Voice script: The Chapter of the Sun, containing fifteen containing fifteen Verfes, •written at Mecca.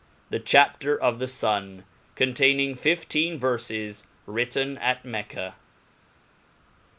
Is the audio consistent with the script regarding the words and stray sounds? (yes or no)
no